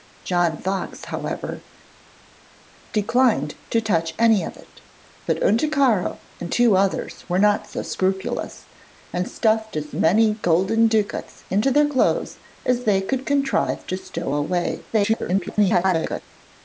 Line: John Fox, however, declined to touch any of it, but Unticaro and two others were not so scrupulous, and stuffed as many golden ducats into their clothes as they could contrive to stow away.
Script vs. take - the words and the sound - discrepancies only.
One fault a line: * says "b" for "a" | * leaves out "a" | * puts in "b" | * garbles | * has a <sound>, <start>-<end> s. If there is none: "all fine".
* garbles